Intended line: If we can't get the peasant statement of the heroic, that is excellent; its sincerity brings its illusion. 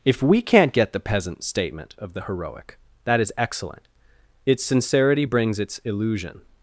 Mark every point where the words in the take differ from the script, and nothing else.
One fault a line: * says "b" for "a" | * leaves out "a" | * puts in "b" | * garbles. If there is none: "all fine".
all fine